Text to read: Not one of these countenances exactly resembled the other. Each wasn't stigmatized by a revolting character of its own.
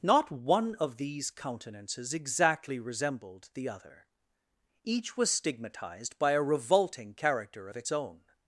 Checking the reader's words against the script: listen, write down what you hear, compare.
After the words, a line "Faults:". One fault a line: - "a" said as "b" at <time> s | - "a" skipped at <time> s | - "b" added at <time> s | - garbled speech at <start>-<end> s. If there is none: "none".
Not one of these countenances exactly resembled the other. Each was stigmatized by a revolting character of its own.
Faults:
- "wasn't" said as "was" at 5.2 s